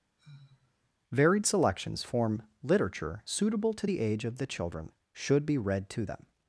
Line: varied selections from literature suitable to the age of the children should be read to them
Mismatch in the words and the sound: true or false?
true